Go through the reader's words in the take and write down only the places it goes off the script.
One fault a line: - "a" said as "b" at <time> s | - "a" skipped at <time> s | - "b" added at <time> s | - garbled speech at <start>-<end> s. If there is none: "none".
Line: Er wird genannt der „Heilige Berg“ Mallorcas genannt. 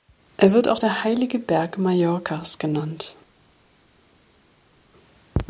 - "genannt" said as "auch" at 0.7 s